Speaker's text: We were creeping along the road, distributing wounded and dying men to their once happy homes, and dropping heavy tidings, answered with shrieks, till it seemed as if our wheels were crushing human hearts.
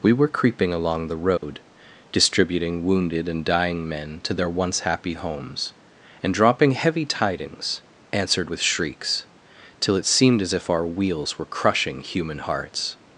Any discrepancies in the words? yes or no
no